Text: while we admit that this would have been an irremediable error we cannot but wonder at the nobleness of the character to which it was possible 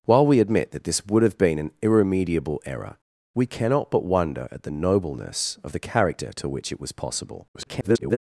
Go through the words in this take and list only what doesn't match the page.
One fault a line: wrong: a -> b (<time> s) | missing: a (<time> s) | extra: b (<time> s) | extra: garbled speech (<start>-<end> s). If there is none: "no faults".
extra: garbled speech (7.5-8.2 s)